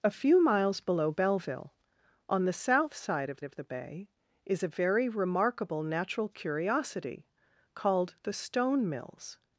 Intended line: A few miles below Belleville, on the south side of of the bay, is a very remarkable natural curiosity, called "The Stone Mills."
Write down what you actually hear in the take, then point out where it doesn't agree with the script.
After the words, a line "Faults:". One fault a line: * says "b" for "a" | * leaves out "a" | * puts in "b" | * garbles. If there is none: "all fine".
A few miles below Belleville, on the south side of of the bay, is a very remarkable natural curiosity, called "The Stone Mills."
Faults:
all fine